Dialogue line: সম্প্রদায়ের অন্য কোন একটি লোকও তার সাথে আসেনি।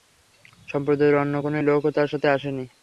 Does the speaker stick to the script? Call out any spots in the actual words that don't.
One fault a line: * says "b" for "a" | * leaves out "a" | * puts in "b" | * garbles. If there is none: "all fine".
* leaves out "একটি"